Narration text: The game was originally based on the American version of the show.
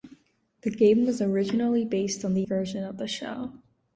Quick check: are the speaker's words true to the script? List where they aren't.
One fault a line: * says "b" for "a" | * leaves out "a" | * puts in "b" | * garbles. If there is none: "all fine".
* leaves out "American"